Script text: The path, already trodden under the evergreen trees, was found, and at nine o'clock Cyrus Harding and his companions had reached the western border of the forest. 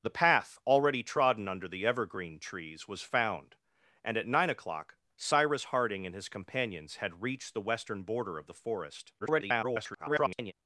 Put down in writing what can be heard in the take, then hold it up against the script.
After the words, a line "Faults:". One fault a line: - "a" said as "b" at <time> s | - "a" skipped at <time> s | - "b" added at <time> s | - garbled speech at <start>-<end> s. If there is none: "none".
The path, already trodden under the evergreen trees, was found, and at nine o'clock Cyrus Harding and his companions had reached the western border of the forest. [garbled]
Faults:
- garbled speech at 9.2-10.5 s